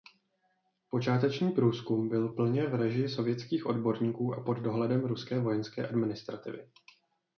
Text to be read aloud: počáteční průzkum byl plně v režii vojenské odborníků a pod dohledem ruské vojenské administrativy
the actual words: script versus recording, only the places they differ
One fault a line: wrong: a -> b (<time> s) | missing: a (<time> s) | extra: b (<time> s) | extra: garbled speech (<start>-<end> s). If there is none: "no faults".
wrong: vojenské -> sovětských (3.1 s)